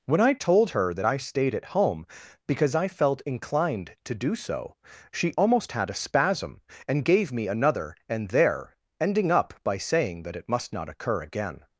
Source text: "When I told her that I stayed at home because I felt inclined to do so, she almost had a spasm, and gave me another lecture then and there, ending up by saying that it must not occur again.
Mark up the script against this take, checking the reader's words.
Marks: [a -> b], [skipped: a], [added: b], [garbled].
"When I told her that I stayed at home because I felt inclined to do so, she almost had a spasm, and gave me another [skipped: lecture then] and there, ending up by saying that it must not occur again.